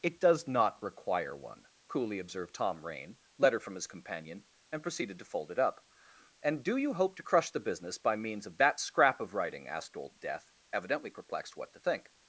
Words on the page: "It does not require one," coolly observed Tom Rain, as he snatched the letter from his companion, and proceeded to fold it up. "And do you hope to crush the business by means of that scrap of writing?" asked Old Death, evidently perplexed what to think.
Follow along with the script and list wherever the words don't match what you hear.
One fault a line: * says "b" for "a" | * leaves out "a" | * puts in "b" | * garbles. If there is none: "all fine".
* leaves out "as he snatched the"